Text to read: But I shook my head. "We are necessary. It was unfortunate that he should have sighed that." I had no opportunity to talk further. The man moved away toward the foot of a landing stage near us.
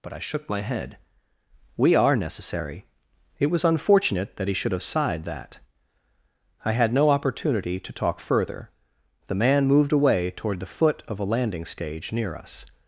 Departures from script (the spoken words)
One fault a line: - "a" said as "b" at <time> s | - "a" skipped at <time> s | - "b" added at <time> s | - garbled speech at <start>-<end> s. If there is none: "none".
none